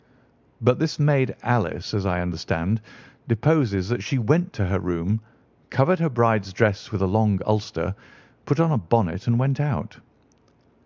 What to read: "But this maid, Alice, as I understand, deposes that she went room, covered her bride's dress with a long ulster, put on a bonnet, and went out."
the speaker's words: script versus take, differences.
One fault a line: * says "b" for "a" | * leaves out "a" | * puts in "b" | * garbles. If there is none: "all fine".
* puts in "to her"